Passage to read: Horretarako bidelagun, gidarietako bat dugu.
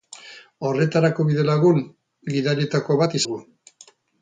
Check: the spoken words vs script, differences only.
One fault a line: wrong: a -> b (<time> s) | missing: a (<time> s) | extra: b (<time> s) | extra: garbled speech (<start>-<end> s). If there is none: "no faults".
no faults